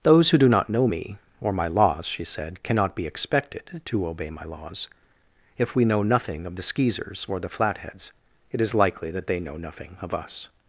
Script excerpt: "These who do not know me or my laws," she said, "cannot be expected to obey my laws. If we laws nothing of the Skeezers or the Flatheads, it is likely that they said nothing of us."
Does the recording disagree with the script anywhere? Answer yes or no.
yes